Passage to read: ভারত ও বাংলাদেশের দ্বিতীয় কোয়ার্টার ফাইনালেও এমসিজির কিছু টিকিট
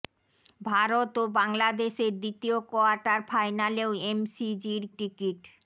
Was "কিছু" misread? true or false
true